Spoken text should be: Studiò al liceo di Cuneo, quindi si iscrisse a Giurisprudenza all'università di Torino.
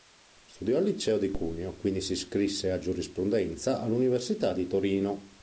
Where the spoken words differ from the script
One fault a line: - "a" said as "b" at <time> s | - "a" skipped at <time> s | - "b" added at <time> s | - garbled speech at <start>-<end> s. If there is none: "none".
none